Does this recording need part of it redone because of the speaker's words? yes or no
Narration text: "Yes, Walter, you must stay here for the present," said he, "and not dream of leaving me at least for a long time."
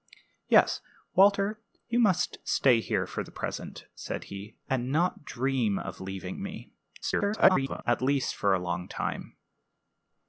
yes